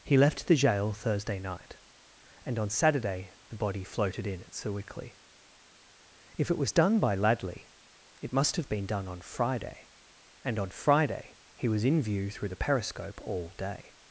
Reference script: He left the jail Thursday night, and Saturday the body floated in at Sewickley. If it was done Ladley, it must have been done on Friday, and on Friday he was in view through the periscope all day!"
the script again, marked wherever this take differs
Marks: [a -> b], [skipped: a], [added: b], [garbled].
He left the jail Thursday night, and [added: on] Saturday the body floated in at Sewickley. If it was done [added: by] Ladley, it must have been done on Friday, and on Friday he was in view through the periscope all day!"